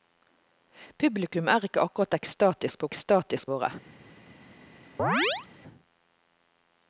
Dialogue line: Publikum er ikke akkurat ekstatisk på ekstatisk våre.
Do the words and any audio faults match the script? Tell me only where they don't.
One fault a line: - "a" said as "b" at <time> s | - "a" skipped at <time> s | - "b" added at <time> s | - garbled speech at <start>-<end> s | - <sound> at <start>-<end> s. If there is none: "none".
- chirp at 5.0-5.5 s